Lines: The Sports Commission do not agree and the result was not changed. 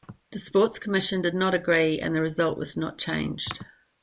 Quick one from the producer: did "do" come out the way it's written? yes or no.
no